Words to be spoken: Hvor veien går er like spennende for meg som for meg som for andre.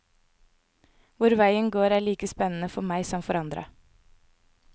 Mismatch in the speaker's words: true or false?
true